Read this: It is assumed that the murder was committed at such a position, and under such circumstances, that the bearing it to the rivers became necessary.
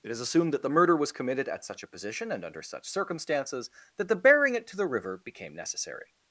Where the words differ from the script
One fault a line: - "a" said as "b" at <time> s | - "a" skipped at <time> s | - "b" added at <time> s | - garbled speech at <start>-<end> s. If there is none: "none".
- "rivers" said as "river" at 4.9 s